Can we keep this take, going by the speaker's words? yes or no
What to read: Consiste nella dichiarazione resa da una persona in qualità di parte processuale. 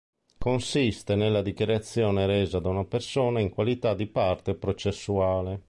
yes